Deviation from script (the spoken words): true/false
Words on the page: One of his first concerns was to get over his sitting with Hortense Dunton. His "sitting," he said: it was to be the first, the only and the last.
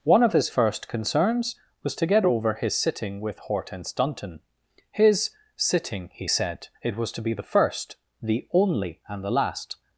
false